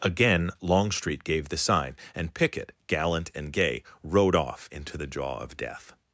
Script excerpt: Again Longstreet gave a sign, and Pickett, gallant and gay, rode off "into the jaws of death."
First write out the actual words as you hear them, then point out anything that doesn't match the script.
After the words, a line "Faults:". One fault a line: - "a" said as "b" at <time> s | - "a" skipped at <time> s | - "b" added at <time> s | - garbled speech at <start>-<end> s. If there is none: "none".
Again Longstreet gave the sign, and Pickett, gallant and gay, rode off "into the jaw of death."
Faults:
- "a" said as "the" at 1.5 s
- "jaws" said as "jaw" at 5.1 s